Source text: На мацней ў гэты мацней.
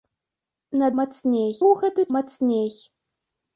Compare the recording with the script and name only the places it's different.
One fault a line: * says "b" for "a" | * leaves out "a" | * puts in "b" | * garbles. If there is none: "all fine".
all fine